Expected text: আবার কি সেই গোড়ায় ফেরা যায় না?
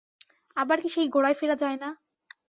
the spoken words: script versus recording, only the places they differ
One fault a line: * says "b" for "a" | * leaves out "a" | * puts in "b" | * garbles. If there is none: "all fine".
all fine